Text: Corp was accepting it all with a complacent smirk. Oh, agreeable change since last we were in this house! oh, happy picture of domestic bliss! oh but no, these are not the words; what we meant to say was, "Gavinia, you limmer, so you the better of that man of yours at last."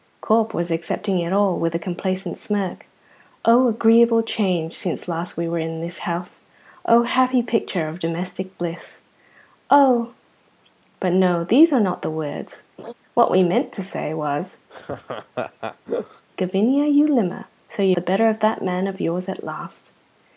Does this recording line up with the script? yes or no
yes